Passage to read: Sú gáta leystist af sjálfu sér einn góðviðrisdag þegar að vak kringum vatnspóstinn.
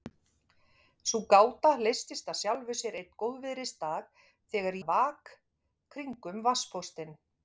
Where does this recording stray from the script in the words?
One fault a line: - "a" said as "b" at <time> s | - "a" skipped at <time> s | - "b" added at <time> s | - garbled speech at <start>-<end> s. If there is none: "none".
none